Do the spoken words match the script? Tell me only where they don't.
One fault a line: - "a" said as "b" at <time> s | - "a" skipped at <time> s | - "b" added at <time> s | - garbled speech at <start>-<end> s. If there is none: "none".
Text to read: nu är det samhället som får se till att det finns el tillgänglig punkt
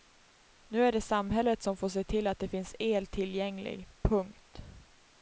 none